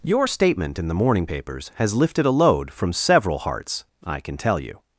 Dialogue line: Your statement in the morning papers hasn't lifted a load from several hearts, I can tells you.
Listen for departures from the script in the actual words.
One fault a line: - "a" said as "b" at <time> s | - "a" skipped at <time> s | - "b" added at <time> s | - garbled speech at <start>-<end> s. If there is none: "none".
- "hasn't" said as "has" at 1.7 s
- "tells" said as "tell" at 4.4 s